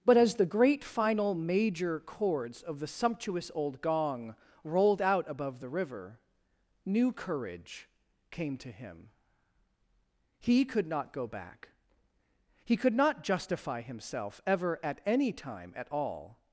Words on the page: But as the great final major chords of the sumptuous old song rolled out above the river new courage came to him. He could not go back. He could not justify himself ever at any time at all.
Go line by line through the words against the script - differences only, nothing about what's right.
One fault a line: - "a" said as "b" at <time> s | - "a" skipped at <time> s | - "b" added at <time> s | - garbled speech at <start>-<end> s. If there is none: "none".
- "song" said as "gong" at 3.8 s